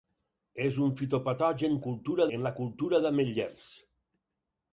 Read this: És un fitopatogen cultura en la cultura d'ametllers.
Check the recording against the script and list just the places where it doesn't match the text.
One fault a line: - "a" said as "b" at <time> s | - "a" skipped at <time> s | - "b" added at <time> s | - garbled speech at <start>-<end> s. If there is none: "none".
none